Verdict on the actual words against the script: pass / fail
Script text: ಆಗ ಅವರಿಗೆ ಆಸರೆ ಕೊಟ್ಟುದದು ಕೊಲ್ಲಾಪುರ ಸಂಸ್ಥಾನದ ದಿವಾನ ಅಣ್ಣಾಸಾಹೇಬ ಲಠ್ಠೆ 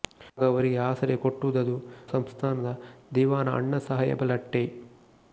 fail